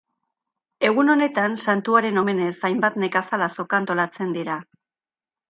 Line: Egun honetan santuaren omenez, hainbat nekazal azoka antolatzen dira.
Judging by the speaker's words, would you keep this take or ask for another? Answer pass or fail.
pass